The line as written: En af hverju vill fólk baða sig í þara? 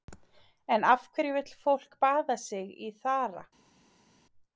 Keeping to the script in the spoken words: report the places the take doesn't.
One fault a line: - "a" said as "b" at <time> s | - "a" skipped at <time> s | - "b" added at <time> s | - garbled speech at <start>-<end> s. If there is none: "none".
none